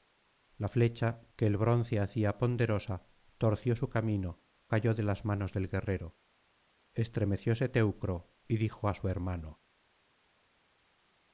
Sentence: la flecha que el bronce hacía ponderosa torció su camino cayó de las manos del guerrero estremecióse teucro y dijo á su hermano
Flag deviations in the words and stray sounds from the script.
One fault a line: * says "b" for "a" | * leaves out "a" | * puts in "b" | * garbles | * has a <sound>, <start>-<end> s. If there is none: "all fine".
all fine